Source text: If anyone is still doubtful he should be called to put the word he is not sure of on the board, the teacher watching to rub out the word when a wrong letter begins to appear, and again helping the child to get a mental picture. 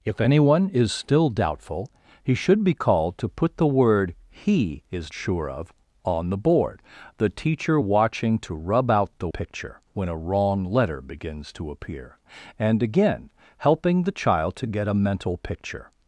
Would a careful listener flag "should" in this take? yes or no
no